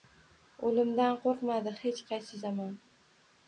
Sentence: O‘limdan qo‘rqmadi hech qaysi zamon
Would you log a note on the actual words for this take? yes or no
no